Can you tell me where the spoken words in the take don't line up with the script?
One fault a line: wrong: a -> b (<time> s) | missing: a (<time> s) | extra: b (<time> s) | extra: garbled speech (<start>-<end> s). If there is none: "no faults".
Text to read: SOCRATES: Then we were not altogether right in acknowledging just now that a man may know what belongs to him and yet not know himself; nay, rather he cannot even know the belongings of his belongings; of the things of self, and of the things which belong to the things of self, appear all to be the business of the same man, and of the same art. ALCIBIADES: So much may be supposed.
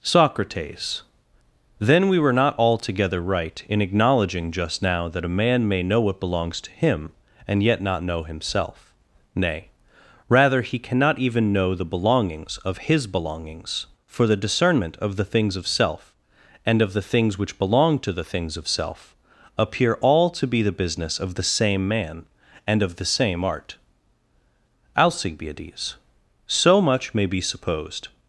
extra: for the discernment (14.1 s)